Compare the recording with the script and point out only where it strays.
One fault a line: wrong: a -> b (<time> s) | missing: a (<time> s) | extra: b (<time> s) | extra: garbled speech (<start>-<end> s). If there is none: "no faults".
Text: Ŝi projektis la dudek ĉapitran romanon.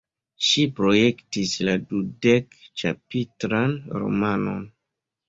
no faults